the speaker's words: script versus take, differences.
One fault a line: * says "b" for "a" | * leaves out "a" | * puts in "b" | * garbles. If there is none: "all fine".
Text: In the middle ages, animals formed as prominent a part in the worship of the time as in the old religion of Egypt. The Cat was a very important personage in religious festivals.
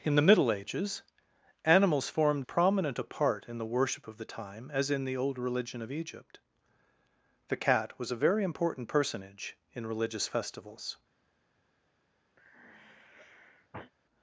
* leaves out "as"